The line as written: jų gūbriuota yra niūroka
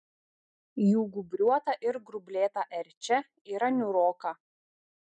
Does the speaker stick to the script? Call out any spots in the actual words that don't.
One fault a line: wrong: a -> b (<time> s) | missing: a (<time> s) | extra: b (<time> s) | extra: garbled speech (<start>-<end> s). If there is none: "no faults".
extra: ir grublėta erčia (1.9 s)